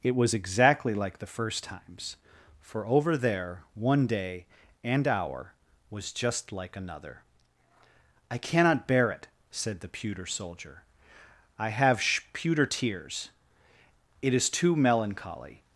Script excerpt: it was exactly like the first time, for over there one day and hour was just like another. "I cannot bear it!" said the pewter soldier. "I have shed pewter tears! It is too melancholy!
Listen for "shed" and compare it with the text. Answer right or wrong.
wrong